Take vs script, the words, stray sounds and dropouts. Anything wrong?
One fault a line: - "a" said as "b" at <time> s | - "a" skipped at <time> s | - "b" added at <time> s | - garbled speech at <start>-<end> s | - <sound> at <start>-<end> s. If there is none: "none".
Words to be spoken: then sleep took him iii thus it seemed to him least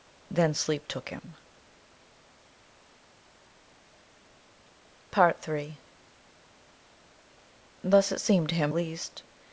none